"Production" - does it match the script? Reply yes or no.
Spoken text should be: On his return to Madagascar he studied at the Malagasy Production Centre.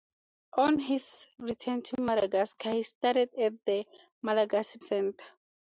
no